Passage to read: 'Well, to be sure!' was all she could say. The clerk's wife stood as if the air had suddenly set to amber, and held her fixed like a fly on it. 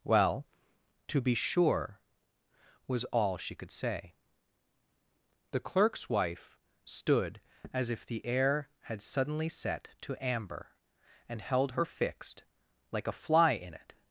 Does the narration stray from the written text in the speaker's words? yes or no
yes